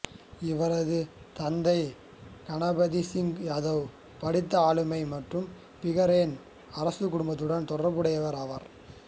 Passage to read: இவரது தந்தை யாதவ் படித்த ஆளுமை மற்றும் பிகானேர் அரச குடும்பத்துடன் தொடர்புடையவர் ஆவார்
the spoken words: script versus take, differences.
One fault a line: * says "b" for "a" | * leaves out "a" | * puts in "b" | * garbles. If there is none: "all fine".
* puts in "கணபத் சிங்"